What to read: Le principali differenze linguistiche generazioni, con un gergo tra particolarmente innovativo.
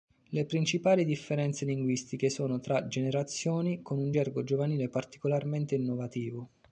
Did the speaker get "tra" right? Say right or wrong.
wrong